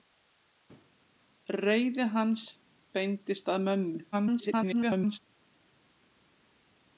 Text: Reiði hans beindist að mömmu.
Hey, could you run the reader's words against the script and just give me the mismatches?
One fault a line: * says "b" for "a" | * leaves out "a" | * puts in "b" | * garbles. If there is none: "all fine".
* garbles